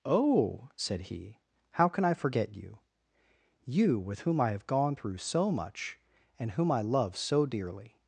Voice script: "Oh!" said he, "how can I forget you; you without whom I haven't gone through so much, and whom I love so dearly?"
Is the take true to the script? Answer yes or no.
no